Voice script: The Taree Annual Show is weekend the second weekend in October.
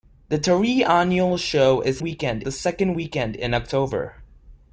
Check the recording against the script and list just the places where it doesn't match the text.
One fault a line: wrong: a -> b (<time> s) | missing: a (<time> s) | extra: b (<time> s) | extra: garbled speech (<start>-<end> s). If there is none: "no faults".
no faults